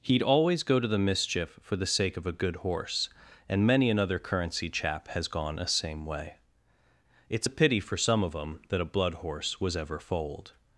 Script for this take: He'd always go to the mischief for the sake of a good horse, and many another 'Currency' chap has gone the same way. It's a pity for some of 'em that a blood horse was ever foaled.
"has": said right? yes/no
yes